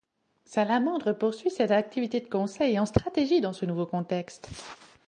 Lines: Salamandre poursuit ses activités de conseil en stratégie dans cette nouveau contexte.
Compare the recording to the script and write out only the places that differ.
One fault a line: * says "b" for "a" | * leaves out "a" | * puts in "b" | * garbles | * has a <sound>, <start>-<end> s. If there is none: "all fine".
* says "ce" for "cette"